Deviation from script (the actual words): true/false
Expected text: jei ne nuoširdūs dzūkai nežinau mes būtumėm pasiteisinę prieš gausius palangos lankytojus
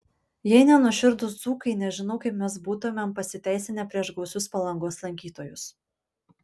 true